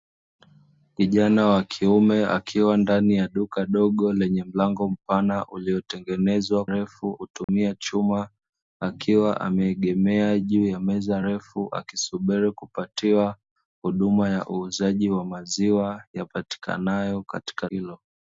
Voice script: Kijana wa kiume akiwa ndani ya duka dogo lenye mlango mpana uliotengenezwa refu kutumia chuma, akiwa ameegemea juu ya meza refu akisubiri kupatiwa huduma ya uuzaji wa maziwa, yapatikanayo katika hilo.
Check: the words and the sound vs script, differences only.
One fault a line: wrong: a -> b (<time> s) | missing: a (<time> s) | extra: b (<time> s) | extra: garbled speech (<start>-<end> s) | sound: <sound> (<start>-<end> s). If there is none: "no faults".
sound: dropout (7.4-7.5 s)